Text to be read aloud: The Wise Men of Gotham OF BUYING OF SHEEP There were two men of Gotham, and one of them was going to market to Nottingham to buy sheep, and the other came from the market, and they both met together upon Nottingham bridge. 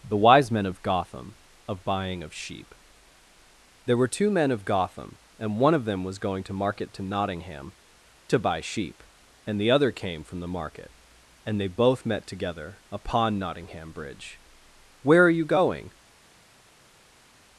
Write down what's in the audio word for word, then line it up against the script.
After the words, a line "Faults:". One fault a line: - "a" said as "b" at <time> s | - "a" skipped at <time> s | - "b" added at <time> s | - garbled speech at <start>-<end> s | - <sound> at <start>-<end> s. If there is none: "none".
The Wise Men of Gotham OF BUYING OF SHEEP There were two men of Gotham, and one of them was going to market to Nottingham to buy sheep, and the other came from the market, and they both met together upon Nottingham bridge. "Where are you going
Faults:
- "Where are you going" added at 15.0 s